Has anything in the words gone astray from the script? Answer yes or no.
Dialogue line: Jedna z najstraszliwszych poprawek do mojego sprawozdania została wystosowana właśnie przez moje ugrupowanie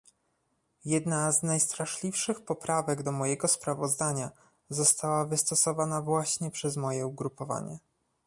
no